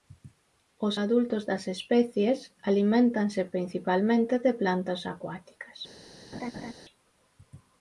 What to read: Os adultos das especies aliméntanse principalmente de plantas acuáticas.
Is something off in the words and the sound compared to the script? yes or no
yes